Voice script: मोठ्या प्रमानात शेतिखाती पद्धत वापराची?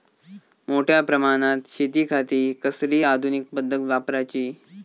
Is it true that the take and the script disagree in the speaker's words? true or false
true